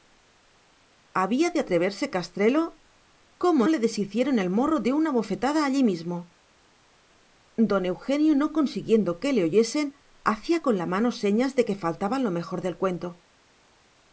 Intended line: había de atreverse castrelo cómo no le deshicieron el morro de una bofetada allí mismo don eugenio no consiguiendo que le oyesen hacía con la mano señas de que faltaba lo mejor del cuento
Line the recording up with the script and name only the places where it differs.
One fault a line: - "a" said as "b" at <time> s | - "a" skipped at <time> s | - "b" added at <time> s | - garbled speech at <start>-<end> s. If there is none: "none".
- "no" skipped at 3.7 s